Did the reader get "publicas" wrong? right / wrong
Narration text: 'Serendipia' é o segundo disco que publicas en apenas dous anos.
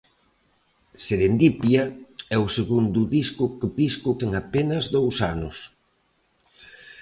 wrong